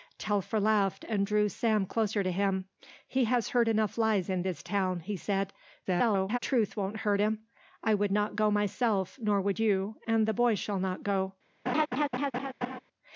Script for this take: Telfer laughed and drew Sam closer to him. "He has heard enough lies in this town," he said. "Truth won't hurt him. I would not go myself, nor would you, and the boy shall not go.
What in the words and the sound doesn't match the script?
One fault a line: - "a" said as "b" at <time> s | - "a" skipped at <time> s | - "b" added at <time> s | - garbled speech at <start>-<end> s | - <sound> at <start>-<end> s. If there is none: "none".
- garbled speech at 5.8-6.4 s
- laugh at 11.7-12.8 s